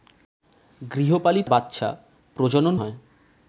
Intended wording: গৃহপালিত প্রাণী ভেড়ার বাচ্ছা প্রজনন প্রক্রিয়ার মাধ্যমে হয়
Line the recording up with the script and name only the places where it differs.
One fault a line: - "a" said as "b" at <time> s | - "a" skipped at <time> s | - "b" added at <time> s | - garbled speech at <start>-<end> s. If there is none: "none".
- "প্রাণী ভেড়ার" skipped at 1.5 s
- "প্রক্রিয়ার মাধ্যমে" skipped at 2.7 s